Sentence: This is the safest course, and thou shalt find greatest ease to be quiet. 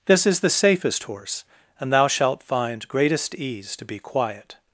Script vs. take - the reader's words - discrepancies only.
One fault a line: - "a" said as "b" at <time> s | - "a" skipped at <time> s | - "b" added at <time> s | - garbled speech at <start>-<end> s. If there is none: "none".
- "course" said as "horse" at 1.0 s